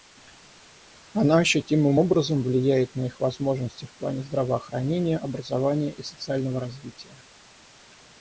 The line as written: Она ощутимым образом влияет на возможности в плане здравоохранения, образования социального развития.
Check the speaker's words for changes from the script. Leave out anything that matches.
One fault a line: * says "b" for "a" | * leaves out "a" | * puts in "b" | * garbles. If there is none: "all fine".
* puts in "их"
* puts in "и"